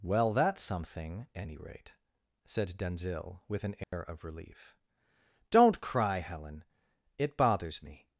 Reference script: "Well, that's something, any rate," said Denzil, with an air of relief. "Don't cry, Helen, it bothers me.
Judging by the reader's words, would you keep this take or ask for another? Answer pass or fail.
pass